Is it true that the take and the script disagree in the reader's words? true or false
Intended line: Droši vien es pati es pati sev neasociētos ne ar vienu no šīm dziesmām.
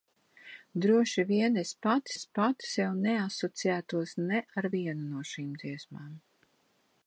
false